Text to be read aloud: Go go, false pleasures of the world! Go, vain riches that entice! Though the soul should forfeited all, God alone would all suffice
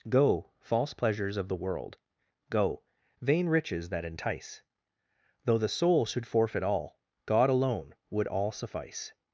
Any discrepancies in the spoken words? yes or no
yes